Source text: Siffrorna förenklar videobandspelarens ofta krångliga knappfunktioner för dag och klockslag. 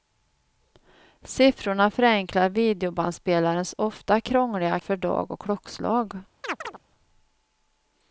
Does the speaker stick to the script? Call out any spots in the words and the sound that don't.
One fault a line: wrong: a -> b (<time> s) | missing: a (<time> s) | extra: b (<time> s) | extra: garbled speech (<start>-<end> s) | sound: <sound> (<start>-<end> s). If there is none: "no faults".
missing: knappfunktioner (4.8 s)
sound: chirp (6.4-6.8 s)